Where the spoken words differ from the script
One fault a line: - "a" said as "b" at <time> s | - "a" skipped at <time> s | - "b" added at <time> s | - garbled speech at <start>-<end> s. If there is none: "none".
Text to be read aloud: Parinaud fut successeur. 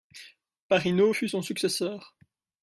- "son" added at 1.3 s